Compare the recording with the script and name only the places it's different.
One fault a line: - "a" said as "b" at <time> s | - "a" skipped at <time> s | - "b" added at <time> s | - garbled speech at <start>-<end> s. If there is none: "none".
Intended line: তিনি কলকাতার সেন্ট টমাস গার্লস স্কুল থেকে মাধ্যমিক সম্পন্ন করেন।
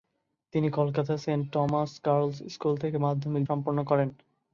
none